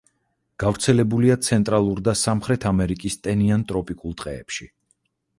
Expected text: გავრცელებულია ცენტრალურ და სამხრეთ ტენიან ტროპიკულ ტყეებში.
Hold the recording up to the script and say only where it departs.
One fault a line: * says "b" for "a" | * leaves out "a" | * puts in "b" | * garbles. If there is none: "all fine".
* puts in "ამერიკის"